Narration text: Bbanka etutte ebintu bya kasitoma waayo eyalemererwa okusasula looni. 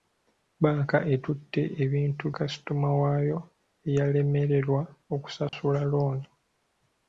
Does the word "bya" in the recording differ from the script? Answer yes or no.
yes